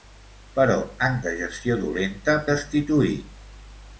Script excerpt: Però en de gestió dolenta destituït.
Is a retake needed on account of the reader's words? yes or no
no